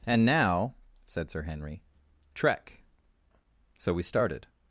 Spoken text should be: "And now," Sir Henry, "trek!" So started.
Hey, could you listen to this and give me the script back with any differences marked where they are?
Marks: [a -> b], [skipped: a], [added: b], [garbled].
"And now," [added: said] Sir Henry, "trek!" So [added: we] started.